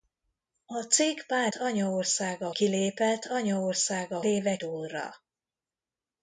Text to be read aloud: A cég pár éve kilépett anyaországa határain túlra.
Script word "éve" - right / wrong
wrong